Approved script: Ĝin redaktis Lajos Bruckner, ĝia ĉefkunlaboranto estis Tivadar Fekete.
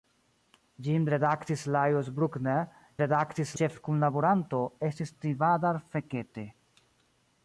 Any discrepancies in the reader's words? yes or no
yes